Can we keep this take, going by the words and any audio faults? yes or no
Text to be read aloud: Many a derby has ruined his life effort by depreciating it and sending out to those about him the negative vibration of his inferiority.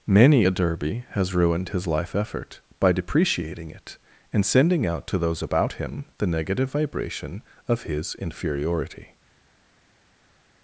yes